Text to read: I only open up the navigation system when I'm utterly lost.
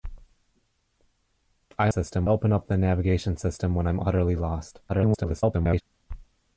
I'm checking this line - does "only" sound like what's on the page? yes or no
no